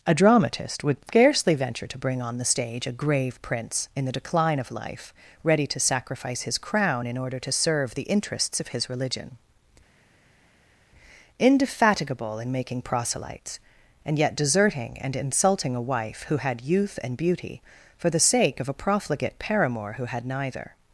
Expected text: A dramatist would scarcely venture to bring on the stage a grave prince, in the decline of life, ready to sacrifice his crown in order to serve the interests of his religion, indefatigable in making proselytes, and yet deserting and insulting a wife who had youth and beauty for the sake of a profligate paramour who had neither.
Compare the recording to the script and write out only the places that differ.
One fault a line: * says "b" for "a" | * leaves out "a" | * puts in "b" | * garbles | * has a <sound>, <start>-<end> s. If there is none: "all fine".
all fine